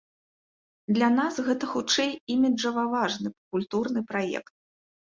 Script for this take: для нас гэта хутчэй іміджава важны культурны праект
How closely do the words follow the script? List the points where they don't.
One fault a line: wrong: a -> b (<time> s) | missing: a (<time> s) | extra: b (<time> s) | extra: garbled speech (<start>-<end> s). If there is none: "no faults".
no faults